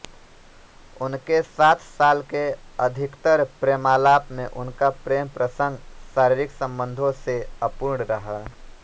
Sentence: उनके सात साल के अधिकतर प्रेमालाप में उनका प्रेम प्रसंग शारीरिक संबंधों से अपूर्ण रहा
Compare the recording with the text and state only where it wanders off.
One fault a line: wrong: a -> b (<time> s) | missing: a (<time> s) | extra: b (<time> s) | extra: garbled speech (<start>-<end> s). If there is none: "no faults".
no faults